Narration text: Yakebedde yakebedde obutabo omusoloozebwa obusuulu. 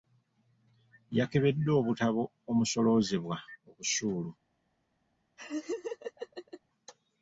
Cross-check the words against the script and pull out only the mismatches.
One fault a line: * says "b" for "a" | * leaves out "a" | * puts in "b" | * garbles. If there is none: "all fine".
* leaves out "yakebedde"